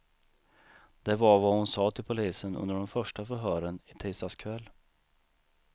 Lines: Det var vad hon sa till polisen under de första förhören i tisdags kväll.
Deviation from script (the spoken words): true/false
false